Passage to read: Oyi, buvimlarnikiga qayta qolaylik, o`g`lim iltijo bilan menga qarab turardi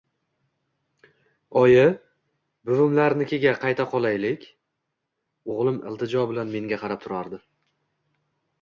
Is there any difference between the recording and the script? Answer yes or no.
no